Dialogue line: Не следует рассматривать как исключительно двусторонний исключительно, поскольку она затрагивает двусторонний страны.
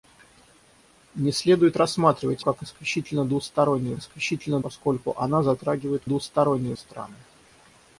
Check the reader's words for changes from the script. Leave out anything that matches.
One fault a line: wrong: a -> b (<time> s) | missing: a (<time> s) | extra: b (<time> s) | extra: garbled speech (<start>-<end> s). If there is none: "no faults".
no faults